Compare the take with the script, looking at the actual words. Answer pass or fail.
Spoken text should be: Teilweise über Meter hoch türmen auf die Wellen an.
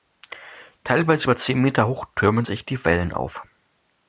fail